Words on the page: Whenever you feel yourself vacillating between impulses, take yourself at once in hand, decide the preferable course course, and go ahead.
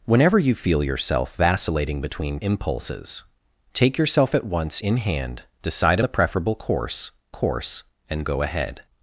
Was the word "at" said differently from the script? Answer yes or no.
no